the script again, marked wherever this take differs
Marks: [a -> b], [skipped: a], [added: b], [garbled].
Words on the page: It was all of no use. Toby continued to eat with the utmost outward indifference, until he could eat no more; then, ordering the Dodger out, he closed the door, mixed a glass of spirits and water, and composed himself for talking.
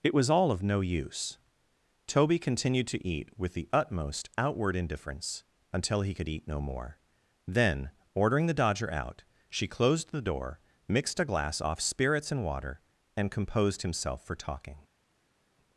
It was all of no use. Toby continued to eat with the utmost outward indifference, until he could eat no more; then, ordering the Dodger out, [he -> she] closed the door, mixed a glass [of -> off] spirits and water, and composed himself for talking.